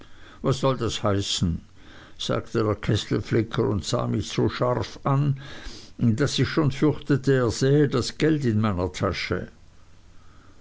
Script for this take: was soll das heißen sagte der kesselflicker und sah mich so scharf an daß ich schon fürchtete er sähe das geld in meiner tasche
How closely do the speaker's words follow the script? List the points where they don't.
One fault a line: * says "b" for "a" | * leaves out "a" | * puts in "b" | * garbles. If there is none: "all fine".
all fine